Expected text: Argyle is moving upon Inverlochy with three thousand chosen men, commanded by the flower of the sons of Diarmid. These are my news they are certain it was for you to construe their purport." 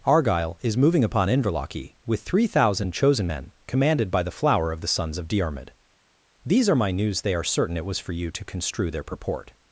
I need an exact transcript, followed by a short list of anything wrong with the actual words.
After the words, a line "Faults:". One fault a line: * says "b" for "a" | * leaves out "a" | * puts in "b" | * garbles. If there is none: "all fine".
Argyle is moving upon Inverlochy with three thousand chosen men, commanded by the flower of the sons of Diarmid. These are my news they are certain it was for you to construe their purport."
Faults:
all fine